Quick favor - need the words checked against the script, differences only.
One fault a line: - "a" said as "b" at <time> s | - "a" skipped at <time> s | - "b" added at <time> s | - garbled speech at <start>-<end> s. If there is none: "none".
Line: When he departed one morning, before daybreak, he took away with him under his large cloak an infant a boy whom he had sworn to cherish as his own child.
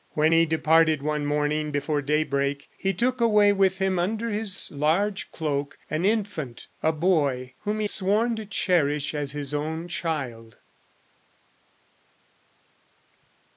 - "had" skipped at 7.9 s